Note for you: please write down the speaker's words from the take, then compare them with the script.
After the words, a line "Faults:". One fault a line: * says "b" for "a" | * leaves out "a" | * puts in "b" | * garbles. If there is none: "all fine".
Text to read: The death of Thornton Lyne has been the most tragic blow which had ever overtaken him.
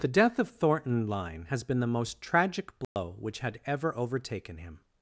The death of Thornton Lyne has been the most tragic blow which had ever overtaken him.
Faults:
all fine